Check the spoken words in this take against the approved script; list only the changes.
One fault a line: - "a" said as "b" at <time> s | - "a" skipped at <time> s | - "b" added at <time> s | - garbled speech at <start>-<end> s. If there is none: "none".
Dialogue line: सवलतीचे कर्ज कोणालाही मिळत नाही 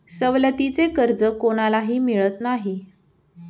none